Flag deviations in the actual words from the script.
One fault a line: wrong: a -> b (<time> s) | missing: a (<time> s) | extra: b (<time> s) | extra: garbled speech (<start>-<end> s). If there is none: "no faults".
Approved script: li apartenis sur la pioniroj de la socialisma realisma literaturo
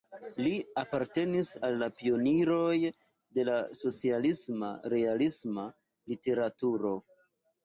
wrong: sur -> al (1.7 s)